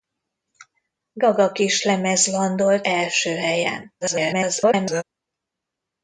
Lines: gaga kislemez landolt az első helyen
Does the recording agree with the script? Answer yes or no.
no